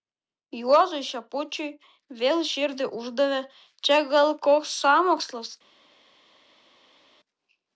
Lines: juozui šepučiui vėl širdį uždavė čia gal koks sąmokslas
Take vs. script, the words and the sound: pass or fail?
pass